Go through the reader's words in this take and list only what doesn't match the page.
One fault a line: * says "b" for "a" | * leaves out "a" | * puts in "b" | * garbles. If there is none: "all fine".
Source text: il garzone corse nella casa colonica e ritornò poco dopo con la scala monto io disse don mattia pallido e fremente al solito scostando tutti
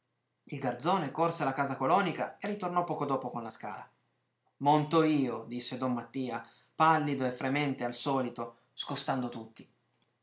* says "alla" for "nella"